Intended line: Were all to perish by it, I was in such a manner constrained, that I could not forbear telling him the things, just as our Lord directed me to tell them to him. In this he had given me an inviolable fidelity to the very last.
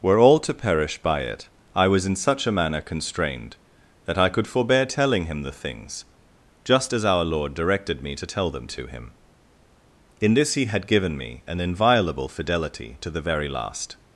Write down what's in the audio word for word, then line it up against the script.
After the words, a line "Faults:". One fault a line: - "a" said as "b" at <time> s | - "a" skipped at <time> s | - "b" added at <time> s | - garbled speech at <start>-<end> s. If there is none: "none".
Were all to perish by it, I was in such a manner constrained, that I could forbear telling him the things, just as our Lord directed me to tell them to him. In this he had given me an inviolable fidelity to the very last.
Faults:
- "not" skipped at 4.5 s